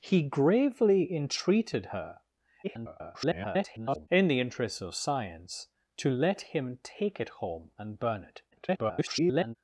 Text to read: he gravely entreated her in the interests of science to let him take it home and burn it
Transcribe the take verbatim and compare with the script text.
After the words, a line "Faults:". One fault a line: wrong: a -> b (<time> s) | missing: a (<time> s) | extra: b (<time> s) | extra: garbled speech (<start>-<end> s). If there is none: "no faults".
he gravely entreated her [garbled] in the interests of science to let him take it home and burn it [garbled]
Faults:
extra: garbled speech (2.6-4.1 s)
extra: garbled speech (8.5-9.6 s)